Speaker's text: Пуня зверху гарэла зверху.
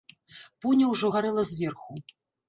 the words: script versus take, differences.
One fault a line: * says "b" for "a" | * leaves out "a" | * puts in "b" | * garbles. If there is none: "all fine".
* says "ўжо" for "зверху"